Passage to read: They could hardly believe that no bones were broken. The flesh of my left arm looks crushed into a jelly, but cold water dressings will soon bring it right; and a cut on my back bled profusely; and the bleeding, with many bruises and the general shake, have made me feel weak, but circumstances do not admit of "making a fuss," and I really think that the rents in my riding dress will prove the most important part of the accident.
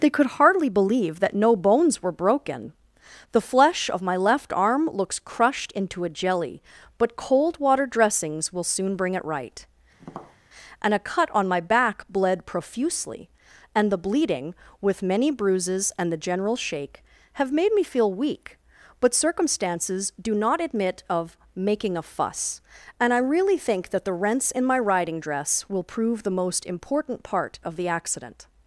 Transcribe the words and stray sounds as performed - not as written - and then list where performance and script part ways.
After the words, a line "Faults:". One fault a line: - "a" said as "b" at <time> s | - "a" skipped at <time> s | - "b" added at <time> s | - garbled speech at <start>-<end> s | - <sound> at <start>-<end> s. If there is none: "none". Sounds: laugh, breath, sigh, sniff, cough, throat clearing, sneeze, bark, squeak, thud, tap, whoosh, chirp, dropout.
They could hardly believe that no bones were broken. The flesh of my left arm looks crushed into a jelly, but cold water dressings will soon bring it right; and a cut on my back bled profusely; and the bleeding, with many bruises and the general shake, have made me feel weak, but circumstances do not admit of "making a fuss," and I really think that the rents in my riding dress will prove the most important part of the accident.
Faults:
- tap at 10.0-10.4 s